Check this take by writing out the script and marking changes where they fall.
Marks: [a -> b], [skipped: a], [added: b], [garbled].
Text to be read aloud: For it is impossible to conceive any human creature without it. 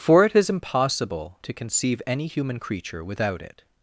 For it is impossible to conceive any human creature without it.